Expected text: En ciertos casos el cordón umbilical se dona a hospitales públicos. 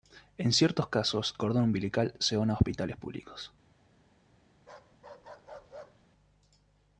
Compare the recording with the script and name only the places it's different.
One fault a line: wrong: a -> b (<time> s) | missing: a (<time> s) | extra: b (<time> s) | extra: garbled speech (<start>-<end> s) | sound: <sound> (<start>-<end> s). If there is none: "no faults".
missing: el (1.4 s)
sound: bark (4.6-6.1 s)